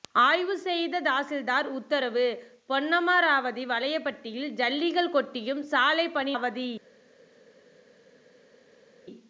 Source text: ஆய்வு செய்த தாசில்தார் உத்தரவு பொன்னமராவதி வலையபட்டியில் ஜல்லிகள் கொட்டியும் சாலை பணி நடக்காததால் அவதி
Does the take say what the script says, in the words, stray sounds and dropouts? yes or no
no